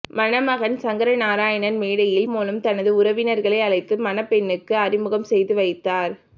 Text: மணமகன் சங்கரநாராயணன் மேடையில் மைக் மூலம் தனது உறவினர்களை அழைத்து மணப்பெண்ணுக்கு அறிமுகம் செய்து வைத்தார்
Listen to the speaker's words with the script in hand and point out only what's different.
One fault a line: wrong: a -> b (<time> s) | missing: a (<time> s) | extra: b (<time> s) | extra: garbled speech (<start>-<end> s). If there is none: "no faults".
missing: மைக் (2.3 s)